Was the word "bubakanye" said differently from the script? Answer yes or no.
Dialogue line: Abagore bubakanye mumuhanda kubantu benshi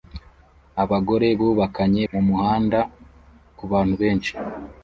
no